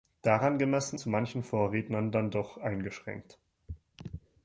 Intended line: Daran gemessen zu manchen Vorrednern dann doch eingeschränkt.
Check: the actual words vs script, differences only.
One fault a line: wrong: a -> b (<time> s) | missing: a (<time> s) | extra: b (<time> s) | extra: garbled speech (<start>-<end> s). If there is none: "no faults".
no faults